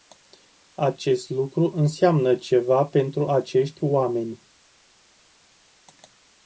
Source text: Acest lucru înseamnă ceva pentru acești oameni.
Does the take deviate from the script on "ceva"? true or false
false